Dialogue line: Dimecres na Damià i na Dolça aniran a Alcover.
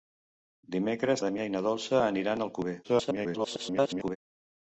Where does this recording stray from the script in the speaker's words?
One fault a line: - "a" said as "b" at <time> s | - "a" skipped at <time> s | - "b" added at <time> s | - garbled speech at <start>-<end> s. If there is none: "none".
- "na" skipped at 1.2 s
- garbled speech at 2.8-4.2 s